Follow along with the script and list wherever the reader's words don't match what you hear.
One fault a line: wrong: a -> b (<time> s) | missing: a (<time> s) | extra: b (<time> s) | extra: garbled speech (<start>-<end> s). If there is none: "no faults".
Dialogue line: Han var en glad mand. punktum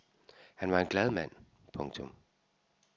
no faults